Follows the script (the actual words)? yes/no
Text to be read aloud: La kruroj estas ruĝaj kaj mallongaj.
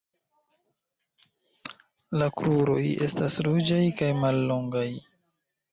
yes